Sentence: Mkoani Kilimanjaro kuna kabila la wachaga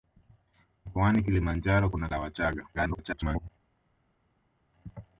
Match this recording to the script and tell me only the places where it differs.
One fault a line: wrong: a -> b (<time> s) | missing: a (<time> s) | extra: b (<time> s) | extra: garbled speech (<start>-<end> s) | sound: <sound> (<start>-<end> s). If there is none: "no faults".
missing: kabila (2.1 s)
extra: garbled speech (2.7-3.5 s)